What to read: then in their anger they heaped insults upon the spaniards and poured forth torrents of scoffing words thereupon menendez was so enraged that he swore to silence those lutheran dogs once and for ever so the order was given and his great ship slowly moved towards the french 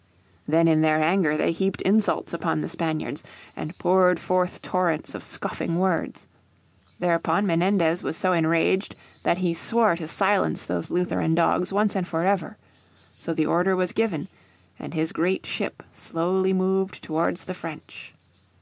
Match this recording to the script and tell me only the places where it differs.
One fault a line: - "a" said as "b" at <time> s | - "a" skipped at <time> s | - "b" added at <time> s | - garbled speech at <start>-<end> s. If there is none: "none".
none